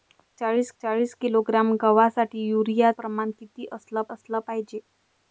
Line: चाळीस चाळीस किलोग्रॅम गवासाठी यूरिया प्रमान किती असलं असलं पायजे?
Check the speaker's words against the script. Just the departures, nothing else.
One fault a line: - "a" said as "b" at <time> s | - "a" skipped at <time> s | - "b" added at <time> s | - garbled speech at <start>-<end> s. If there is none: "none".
none